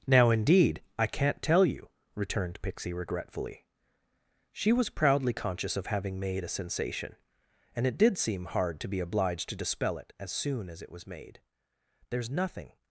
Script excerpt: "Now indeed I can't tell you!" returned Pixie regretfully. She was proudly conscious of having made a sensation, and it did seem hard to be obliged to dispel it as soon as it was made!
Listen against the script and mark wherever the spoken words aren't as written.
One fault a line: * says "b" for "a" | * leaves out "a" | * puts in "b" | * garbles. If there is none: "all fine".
* puts in "There's nothing"